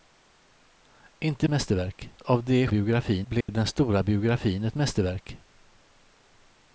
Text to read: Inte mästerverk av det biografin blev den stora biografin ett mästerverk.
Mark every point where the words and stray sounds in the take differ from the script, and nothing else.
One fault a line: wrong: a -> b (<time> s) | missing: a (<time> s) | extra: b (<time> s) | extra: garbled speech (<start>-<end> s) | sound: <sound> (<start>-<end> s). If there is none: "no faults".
sound: dropout (3.4-3.5 s)